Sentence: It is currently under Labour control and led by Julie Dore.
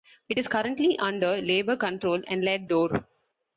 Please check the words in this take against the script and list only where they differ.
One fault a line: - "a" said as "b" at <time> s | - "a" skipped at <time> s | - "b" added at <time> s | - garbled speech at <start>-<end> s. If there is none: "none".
- "by Julie" skipped at 2.6 s